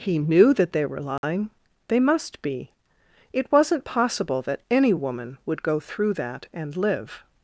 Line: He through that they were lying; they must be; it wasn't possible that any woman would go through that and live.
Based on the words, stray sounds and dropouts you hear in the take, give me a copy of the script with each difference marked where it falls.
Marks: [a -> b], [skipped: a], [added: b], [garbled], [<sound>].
He [through -> knew] that they were lying; [dropout] they must be; it wasn't possible that any woman would go through that and live.